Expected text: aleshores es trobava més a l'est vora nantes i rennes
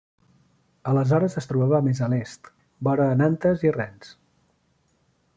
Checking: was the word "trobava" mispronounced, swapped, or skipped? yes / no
no